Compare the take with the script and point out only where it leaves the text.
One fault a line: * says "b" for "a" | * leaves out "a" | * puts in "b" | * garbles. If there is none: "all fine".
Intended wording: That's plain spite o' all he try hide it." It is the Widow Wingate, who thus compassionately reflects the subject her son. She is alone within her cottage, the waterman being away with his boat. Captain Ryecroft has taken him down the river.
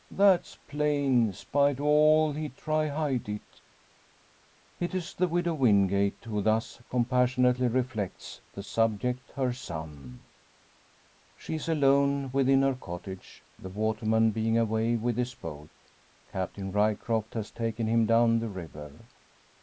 all fine